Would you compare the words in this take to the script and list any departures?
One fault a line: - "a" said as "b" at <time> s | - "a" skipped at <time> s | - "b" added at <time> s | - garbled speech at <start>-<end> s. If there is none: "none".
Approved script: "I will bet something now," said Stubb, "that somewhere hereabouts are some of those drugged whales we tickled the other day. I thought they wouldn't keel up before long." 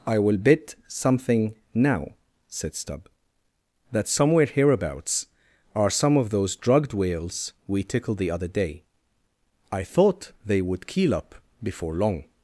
- "wouldn't" said as "would" at 10.6 s